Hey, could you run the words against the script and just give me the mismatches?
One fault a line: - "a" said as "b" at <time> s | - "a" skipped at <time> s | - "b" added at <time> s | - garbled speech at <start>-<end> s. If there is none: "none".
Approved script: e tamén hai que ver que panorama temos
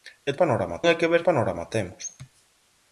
- "tamén" said as "panorama" at 0.4 s
- "que" skipped at 1.2 s